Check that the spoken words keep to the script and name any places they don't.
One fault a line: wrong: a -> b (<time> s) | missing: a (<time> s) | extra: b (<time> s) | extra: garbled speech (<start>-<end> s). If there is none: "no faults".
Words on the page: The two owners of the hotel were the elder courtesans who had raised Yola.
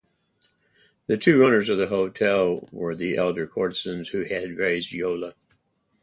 no faults